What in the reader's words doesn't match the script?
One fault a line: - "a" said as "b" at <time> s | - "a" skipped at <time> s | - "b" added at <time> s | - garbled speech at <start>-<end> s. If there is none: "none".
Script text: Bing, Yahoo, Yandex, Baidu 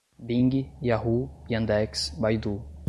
none